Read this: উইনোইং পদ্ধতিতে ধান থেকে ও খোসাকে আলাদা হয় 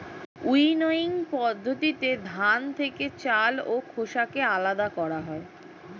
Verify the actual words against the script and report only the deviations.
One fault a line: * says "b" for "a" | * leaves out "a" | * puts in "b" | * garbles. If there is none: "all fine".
* puts in "চাল"
* puts in "করা"